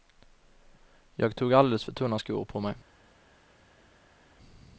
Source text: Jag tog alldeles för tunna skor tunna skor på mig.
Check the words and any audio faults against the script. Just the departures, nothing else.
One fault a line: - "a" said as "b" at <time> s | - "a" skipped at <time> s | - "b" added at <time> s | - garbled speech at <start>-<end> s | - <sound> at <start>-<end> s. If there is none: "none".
- "tunna skor" skipped at 2.4 s